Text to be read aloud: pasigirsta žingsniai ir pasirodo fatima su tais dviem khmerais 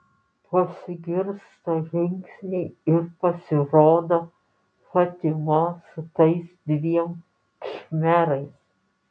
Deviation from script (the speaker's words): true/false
false